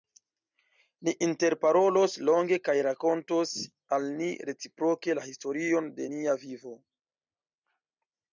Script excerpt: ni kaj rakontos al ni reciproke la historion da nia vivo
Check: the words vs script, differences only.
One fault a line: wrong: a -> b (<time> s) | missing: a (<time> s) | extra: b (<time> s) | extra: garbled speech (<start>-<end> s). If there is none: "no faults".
extra: interparolos longe (1.2 s)
wrong: da -> de (6.0 s)